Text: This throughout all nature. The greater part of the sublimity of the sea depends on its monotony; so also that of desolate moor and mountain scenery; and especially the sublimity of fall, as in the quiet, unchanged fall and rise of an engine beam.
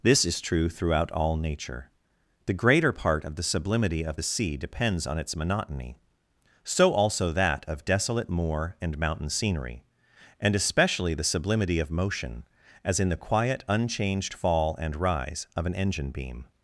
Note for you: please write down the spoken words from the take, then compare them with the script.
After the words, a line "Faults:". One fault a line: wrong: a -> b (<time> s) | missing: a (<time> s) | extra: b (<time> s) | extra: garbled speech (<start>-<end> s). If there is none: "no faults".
This is true throughout all nature. The greater part of the sublimity of the sea depends on its monotony; so also that of desolate moor and mountain scenery; and especially the sublimity of motion, as in the quiet, unchanged fall and rise of an engine beam.
Faults:
extra: is true (0.2 s)
wrong: fall -> motion (11.9 s)